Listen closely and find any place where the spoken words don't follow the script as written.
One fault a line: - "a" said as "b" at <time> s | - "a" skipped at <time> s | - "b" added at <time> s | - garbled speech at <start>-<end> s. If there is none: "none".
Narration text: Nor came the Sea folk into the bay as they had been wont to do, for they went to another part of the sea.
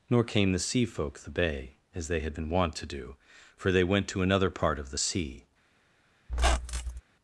- "into" skipped at 1.2 s